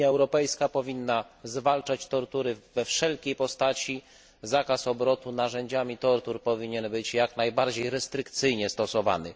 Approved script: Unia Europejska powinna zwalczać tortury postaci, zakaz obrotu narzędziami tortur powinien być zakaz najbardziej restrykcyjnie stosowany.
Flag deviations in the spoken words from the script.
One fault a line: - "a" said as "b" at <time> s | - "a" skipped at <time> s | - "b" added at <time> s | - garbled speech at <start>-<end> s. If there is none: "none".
- "we wszelkiej" added at 2.7 s
- "zakaz" said as "jak" at 7.1 s